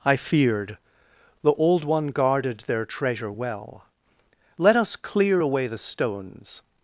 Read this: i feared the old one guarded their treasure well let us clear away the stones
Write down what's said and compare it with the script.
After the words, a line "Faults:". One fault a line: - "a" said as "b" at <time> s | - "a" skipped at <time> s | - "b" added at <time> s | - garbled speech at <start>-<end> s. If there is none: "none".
i feared the old one guarded their treasure well let us clear away the stones
Faults:
none